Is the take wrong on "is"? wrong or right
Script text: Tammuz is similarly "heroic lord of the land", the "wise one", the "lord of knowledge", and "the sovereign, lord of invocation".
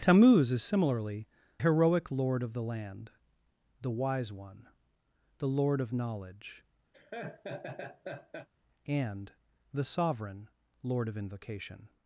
right